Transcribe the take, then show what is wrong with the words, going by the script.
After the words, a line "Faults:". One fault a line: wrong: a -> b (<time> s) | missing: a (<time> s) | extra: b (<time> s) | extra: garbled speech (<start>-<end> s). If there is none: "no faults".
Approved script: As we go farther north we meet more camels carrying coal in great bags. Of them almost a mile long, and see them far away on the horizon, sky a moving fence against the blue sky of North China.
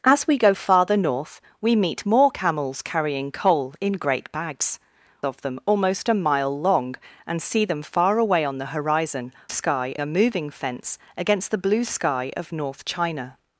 As we go farther north we meet more camels carrying coal in great bags. Of them almost a mile long, and see them far away on the horizon, sky a moving fence against the blue sky of North China.
Faults:
no faults